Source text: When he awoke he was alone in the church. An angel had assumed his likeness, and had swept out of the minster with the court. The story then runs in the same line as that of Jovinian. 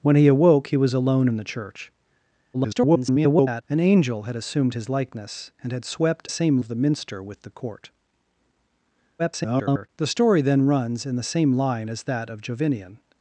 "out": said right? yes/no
no